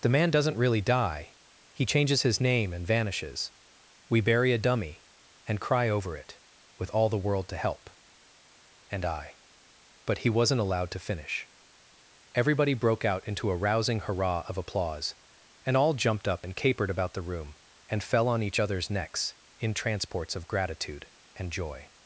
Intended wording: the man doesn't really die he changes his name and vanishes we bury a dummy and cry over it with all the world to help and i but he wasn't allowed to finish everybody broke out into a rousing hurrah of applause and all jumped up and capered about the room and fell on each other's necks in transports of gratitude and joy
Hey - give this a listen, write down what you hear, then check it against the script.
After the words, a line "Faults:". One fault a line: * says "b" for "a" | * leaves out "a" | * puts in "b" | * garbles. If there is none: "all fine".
the man doesn't really die he changes his name and vanishes we bury a dummy and cry over it with all the world to help and i but he wasn't allowed to finish everybody broke out into a rousing hurrah of applause and all jumped up and capered about the room and fell on each other's necks in transports of gratitude and joy
Faults:
all fine